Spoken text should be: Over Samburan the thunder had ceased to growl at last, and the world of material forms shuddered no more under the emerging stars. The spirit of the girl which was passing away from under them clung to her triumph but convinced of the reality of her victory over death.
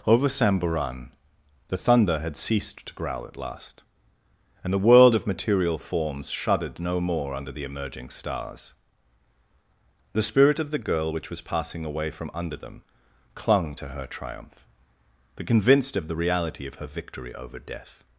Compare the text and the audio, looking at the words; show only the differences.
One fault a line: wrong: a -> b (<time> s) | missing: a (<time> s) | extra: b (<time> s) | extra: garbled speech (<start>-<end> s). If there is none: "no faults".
no faults